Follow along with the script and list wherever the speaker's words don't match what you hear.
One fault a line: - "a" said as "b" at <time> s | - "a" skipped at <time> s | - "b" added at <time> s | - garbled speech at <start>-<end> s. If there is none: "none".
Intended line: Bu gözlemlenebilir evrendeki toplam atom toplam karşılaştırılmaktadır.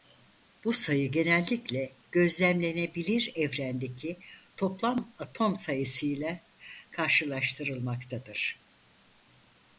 - "sayı genellikle" added at 0.7 s
- "toplam" said as "sayısıyla" at 5.5 s